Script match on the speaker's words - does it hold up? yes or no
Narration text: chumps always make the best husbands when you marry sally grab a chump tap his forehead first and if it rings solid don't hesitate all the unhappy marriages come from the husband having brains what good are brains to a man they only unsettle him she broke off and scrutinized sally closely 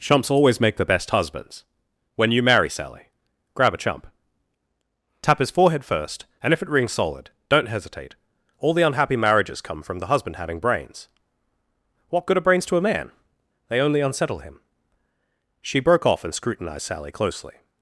yes